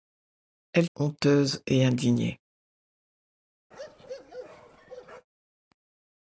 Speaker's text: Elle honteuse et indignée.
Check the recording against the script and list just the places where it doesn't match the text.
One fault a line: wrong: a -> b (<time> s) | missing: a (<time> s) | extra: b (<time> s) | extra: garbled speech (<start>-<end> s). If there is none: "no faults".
no faults